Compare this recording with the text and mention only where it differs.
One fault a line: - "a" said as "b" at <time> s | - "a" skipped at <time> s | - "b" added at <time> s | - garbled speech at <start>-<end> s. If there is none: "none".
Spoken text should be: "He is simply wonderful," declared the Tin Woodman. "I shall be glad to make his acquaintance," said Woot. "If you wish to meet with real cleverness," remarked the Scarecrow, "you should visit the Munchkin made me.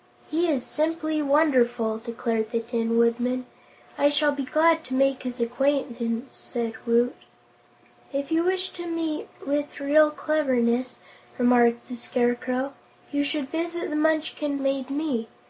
none